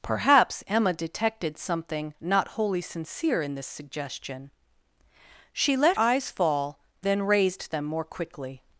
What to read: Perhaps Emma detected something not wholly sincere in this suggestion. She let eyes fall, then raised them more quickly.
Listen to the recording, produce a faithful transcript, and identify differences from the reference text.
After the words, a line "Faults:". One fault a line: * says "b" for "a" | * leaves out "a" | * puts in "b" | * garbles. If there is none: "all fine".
Perhaps Emma detected something not wholly sincere in this suggestion. She let eyes fall, then raised them more quickly.
Faults:
all fine